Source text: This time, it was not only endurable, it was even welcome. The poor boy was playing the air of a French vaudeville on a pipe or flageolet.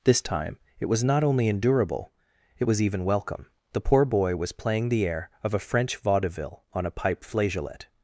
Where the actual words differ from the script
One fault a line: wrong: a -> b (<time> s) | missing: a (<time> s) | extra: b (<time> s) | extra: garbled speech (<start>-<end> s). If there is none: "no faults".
missing: or (7.2 s)